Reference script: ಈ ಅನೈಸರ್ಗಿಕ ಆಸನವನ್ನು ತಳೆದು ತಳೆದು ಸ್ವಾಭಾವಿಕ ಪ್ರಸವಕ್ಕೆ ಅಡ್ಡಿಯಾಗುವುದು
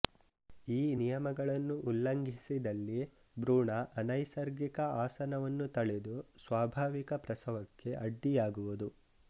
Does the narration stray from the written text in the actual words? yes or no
yes